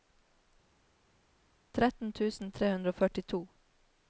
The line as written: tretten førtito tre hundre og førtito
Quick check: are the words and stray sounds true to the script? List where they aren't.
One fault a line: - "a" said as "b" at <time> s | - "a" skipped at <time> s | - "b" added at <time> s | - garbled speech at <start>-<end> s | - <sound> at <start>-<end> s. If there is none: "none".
- "førtito" said as "tusen" at 2.2 s